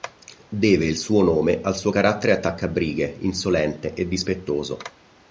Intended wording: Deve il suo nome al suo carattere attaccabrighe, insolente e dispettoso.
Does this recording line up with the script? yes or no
yes